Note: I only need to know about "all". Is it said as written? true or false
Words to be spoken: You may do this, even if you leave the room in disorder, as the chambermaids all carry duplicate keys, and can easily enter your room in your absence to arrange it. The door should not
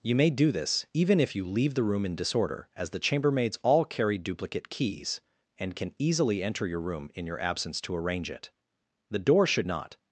true